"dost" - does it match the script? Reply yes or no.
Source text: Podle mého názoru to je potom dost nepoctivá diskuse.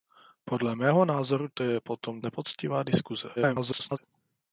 no